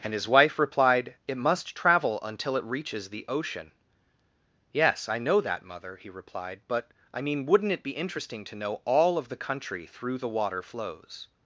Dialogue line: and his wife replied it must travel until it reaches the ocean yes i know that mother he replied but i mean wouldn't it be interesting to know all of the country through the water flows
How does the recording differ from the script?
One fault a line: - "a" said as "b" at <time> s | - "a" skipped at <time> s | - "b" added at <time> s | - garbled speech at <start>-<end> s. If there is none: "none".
none